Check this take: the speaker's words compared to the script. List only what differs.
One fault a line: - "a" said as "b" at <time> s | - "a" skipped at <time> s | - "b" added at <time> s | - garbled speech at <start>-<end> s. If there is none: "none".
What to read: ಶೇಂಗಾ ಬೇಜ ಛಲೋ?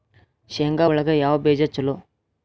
- "ಒಳಗ ಯಾವ" added at 0.8 s